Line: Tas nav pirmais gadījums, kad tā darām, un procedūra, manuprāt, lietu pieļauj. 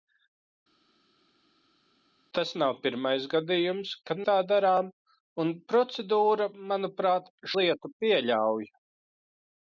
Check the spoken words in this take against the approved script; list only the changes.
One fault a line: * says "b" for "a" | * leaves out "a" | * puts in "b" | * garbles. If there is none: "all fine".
all fine